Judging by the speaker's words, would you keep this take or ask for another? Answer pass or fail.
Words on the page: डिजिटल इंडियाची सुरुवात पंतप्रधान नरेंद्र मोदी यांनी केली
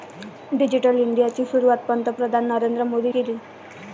fail